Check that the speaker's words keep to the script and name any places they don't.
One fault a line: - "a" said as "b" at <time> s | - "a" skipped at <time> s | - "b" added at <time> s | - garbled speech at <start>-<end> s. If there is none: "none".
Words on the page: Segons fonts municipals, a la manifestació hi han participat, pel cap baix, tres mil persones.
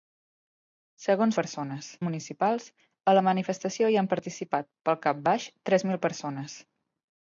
- "fonts" said as "persones" at 1.4 s